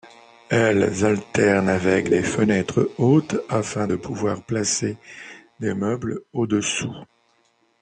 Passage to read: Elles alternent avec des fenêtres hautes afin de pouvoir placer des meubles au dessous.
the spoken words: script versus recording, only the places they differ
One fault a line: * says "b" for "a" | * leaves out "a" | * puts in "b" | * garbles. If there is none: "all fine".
all fine